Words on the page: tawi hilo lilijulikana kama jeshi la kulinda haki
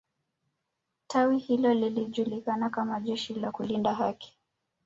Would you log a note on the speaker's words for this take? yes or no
no